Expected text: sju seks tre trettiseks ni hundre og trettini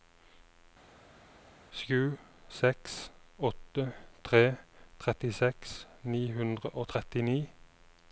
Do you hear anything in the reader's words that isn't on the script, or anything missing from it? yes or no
yes